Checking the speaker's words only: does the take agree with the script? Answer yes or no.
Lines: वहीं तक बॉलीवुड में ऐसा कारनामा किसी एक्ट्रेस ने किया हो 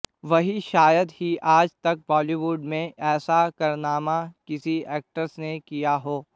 no